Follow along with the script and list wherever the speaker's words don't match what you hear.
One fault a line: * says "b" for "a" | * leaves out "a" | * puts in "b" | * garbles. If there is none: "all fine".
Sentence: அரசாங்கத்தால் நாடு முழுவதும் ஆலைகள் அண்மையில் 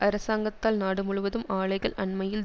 all fine